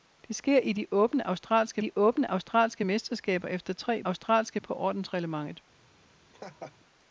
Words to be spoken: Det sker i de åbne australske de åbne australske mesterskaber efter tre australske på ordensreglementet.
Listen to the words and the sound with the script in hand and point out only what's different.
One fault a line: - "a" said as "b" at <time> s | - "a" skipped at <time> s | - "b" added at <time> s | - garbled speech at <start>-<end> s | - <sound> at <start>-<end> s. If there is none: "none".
- laugh at 6.3-6.8 s